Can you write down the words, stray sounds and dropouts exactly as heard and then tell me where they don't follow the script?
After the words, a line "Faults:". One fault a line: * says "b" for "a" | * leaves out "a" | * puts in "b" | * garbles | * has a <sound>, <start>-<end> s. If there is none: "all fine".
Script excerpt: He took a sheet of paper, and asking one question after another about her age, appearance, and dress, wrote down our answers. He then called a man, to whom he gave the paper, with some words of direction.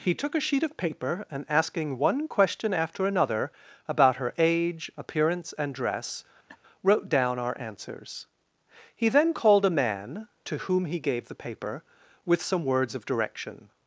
He took a sheet of paper, and asking one question after another about her age, appearance, and dress, wrote down our answers. He then called a man, to whom he gave the paper, with some words of direction.
Faults:
* has a laugh, 6.5-6.6 s